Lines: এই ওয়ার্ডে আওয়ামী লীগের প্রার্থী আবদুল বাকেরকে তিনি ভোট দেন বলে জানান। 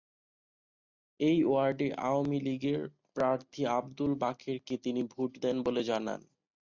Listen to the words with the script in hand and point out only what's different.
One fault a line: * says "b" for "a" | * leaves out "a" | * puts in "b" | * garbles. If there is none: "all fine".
all fine